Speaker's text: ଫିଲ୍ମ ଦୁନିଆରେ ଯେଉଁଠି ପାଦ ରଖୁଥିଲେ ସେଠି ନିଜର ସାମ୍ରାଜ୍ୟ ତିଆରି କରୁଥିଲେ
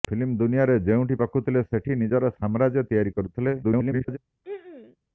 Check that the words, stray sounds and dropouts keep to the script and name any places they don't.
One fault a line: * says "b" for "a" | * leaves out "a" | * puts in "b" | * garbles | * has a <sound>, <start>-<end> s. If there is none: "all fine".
* leaves out "ପାଦ"
* garbles
* has a throat clearing, 4.4-5.0 s